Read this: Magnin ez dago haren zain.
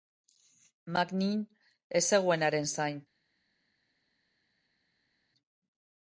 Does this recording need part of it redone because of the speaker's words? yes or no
yes